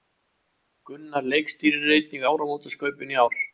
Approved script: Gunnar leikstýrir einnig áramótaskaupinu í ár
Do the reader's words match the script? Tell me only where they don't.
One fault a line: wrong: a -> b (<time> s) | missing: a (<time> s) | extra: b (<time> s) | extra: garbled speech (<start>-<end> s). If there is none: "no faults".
no faults